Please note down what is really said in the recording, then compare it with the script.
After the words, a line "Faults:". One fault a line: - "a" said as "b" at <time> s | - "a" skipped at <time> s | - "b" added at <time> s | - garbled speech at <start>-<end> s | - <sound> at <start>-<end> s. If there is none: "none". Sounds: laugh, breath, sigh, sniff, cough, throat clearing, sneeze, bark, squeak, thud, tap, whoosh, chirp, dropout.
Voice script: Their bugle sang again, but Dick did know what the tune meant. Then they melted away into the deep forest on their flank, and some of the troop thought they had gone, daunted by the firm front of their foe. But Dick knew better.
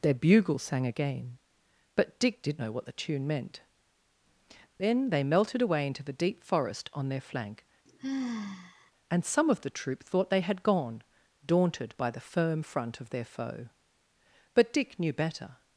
Their bugle sang again, but Dick did know what the tune meant. Then they melted away into the deep forest on their flank, and some of the troop thought they had gone, daunted by the firm front of their foe. But Dick knew better.
Faults:
- sigh at 7.9-8.9 s